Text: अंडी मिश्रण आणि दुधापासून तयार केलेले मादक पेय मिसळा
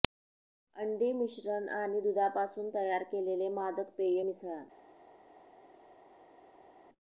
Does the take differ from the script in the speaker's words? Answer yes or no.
no